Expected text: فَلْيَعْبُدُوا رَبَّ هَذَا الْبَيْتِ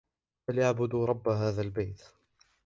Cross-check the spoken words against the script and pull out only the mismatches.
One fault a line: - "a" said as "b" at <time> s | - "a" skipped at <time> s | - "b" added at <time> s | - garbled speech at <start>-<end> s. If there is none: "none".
none